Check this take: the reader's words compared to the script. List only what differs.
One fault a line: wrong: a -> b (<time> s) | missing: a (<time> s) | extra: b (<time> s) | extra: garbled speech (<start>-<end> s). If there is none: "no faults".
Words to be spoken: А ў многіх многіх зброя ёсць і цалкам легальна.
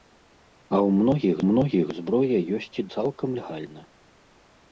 no faults